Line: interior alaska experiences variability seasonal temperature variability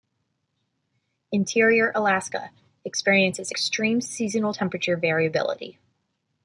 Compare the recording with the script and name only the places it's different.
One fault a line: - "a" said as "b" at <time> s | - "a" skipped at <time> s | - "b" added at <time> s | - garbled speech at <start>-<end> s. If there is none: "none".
- "variability" said as "extreme" at 3.5 s